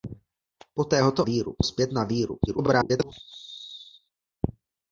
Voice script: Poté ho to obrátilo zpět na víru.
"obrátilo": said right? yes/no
no